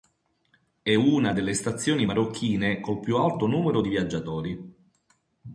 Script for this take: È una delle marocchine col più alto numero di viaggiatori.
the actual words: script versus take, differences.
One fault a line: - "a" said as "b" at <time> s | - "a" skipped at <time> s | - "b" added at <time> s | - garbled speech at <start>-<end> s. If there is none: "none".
- "stazioni" added at 1.5 s